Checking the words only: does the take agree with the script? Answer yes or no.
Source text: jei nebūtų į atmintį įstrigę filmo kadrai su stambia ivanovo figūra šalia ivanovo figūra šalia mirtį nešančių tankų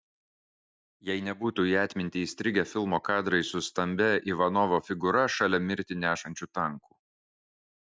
no